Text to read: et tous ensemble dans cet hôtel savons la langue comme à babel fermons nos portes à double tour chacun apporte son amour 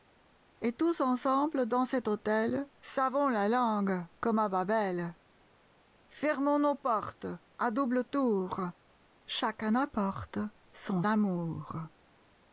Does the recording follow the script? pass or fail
pass